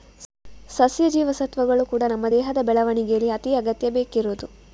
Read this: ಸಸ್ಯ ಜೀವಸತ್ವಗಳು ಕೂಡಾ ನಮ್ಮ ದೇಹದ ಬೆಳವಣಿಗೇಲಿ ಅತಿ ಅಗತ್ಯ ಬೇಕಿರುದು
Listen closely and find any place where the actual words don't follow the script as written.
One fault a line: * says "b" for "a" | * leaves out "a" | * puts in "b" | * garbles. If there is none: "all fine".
all fine